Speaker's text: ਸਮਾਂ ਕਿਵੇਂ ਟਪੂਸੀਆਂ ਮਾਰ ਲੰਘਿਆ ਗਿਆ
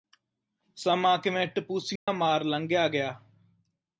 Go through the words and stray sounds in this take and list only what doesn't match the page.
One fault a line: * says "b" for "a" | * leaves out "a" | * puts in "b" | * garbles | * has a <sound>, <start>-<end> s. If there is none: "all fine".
* has a dropout, 2.0-2.1 s